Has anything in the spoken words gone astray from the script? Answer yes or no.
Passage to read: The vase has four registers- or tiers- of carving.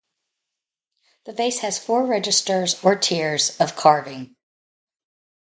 no